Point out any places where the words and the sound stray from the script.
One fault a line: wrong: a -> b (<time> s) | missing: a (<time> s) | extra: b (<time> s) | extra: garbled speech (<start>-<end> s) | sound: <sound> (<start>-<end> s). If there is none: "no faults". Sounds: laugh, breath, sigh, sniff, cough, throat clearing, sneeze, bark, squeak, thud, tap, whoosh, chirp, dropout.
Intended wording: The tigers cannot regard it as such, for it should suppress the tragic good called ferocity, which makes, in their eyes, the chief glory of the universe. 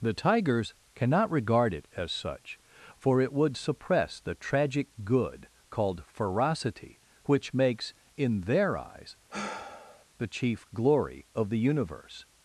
wrong: should -> would (3.3 s)
sound: sigh (9.3-10.0 s)